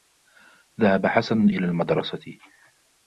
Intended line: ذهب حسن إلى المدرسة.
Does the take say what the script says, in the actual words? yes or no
yes